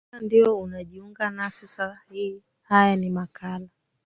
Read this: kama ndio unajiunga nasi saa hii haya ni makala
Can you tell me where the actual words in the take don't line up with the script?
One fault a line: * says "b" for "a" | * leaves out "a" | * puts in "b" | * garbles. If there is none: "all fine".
all fine